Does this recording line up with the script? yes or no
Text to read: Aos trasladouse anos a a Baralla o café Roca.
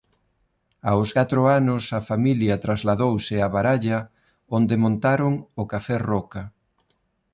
no